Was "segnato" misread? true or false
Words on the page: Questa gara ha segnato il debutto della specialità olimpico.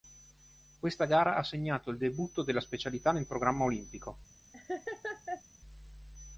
false